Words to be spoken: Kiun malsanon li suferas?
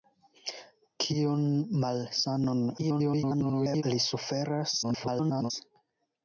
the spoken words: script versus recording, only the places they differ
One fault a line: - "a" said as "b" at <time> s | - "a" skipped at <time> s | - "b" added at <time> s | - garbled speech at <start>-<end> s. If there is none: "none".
- garbled speech at 2.8-3.8 s
- garbled speech at 4.8-5.5 s